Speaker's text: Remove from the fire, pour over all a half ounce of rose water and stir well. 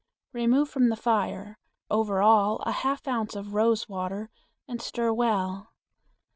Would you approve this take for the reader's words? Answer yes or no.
no